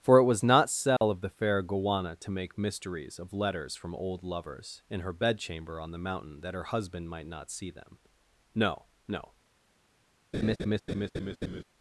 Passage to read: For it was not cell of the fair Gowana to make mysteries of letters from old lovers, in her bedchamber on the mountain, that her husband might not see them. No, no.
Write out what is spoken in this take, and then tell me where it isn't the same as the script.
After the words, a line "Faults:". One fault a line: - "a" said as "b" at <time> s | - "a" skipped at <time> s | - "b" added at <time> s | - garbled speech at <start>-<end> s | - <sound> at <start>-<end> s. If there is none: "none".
For it was not cell of the fair Gowana to make mysteries of letters from old lovers, in her bedchamber on the mountain, that her husband might not see them. No, no.
Faults:
- dropout at 1.0-1.0 s
- laugh at 10.3-11.6 s